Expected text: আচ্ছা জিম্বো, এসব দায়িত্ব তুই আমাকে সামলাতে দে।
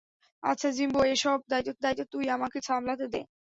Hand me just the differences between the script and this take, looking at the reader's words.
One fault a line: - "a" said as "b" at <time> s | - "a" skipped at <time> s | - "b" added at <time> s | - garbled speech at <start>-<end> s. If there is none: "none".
- "দায়িত্ব" added at 1.8 s